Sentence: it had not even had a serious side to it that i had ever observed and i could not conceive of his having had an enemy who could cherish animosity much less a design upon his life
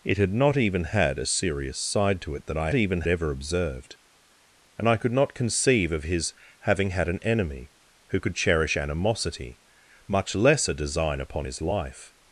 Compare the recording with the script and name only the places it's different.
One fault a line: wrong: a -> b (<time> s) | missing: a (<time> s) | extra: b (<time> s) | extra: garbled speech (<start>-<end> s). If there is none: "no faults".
wrong: had -> even (2.7 s)